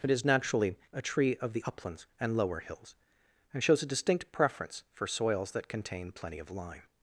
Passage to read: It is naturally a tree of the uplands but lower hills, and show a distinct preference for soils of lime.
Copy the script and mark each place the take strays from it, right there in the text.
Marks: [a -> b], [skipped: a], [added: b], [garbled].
It is naturally a tree of the uplands [but -> and] lower hills, and [show -> shows] a distinct preference for soils [added: that contain plenty] of lime.